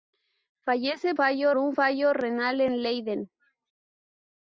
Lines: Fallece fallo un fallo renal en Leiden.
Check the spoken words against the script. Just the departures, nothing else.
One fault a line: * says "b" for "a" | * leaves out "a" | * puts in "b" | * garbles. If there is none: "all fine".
all fine